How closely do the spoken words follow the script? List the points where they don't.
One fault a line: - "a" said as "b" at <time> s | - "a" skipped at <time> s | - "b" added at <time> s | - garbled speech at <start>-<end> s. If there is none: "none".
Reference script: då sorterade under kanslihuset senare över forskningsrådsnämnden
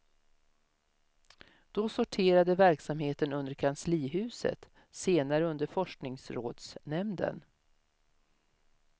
- "verksamheten" added at 2.5 s
- "över" said as "under" at 5.5 s